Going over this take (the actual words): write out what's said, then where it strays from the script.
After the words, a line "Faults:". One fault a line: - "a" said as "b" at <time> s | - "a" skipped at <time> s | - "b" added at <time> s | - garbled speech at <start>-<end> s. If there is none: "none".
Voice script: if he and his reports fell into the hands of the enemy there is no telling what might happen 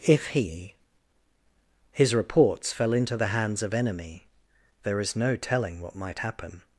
if he his reports fell into the hands of enemy there is no telling what might happen
Faults:
- "and" skipped at 0.8 s
- "the" skipped at 3.7 s